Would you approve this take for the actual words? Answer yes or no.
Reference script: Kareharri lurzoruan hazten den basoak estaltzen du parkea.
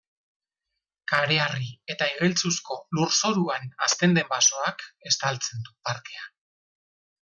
no